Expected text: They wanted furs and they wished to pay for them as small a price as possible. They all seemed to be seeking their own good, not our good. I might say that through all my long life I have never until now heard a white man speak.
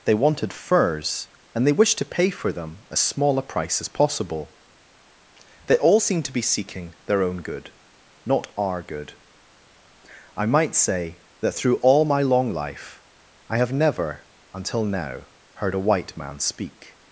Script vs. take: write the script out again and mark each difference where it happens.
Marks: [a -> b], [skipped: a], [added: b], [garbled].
They wanted furs and they wished to pay for them as small a price as possible. They all seemed to be seeking their own good, not our good. I might say that through all my long life I have never until now heard a white man speak.